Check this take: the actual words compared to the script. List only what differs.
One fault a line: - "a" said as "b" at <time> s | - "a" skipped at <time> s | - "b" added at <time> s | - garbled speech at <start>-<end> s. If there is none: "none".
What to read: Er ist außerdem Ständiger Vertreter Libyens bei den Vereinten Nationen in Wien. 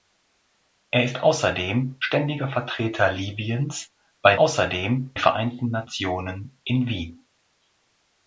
- "den" said as "außerdem" at 4.4 s